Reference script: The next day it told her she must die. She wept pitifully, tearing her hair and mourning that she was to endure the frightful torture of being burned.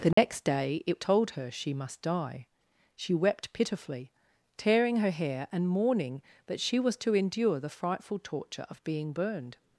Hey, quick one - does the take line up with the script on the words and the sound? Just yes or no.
no